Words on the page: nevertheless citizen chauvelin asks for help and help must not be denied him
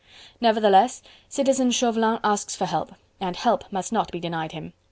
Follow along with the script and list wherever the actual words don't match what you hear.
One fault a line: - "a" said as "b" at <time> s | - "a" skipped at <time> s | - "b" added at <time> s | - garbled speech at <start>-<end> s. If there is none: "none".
none